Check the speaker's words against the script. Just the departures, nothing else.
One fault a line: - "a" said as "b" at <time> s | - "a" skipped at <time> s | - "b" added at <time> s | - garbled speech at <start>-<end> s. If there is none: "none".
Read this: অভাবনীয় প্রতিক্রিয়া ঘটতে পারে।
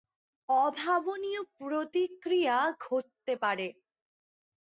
none